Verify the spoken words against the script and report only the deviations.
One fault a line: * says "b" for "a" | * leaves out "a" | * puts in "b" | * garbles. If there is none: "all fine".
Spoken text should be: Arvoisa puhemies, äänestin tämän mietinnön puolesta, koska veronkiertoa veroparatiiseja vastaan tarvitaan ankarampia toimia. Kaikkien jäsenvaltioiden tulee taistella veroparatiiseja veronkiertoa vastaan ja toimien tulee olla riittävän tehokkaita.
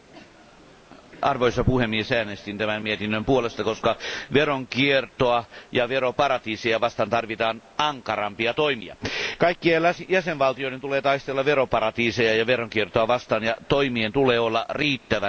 * puts in "ja"
* puts in "ja"